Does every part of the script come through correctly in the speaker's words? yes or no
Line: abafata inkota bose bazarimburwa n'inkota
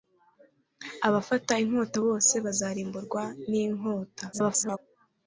no